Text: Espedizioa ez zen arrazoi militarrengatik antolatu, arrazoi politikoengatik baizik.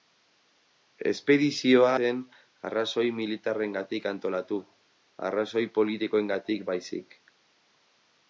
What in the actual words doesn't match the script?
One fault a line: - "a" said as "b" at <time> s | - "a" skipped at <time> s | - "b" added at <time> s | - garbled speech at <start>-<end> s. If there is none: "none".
- "ez" skipped at 1.9 s